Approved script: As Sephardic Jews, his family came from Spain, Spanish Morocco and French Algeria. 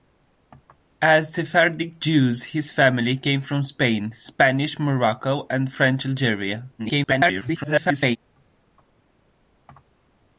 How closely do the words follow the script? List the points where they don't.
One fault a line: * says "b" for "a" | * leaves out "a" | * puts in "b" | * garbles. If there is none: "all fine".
* garbles